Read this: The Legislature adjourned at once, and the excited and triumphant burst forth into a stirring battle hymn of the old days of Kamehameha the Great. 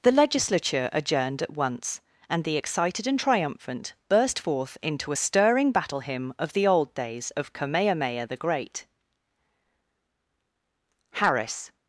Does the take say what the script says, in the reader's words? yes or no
no